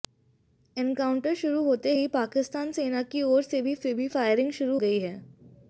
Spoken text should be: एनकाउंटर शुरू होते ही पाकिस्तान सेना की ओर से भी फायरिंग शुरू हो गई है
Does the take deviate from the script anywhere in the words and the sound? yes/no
yes